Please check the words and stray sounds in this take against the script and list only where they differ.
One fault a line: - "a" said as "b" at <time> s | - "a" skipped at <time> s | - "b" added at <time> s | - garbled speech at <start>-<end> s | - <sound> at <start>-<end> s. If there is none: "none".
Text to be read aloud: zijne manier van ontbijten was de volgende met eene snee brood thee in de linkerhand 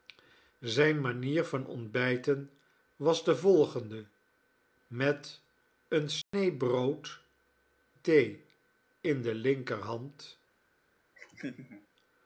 - dropout at 6.2-6.3 s
- laugh at 11.2-11.9 s